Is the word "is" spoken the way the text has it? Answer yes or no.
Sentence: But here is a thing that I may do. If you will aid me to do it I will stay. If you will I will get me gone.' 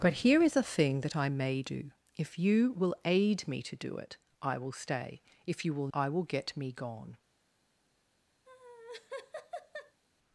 yes